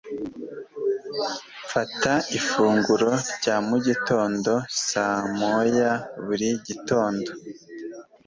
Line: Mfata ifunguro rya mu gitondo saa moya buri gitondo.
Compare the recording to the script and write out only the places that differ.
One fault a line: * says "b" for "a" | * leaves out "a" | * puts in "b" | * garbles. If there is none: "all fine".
all fine